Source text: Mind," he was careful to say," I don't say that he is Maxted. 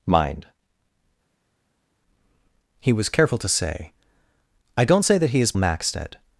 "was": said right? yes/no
yes